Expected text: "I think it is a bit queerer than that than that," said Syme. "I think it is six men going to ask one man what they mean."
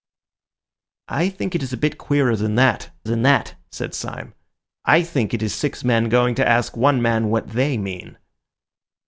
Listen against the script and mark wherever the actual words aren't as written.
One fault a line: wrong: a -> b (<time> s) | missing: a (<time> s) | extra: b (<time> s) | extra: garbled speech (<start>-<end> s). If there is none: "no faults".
no faults